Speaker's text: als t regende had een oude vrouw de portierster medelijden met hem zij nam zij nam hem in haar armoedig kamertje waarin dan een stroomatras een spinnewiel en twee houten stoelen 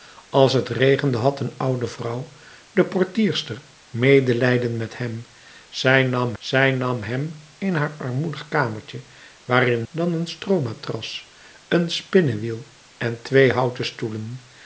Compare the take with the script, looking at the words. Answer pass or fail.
pass